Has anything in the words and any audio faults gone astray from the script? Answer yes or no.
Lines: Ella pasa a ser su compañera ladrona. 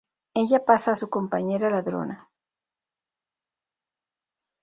yes